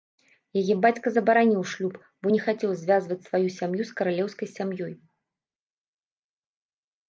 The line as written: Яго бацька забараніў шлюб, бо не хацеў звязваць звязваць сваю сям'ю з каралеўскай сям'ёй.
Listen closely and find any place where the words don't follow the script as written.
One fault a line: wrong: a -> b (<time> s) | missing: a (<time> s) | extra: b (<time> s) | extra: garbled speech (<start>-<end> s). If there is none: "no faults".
wrong: Яго -> Яе (0.6 s)
missing: звязваць (3.2 s)